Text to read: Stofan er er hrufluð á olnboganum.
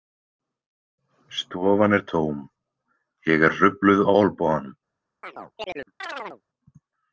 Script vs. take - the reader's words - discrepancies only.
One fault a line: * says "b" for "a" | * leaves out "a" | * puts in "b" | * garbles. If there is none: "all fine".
* puts in "tóm ég"